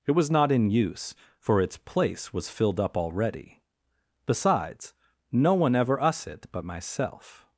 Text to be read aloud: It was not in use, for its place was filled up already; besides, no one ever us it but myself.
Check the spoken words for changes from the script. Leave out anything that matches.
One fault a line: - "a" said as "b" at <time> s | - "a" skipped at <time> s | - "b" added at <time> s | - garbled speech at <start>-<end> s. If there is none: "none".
none